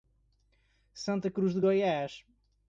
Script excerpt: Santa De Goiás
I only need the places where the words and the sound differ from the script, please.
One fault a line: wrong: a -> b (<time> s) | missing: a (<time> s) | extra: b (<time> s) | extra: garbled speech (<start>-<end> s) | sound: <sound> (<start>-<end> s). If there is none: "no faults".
extra: Cruz (1.3 s)